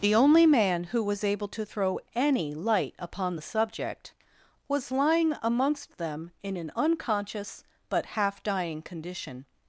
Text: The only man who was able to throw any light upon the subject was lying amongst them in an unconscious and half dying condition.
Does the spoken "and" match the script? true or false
false